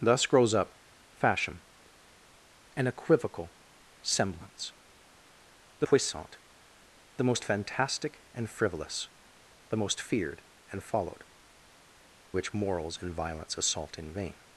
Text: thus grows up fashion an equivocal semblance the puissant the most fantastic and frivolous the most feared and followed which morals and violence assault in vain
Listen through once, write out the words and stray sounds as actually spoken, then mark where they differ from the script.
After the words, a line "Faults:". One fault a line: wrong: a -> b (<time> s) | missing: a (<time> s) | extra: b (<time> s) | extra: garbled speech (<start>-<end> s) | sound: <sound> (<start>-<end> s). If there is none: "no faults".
thus grows up fashion an equivocal semblance the puissant the most fantastic and frivolous the most feared and followed which morals and violence assault in vain
Faults:
no faults